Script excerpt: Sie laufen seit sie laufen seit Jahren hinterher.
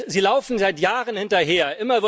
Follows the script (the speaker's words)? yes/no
no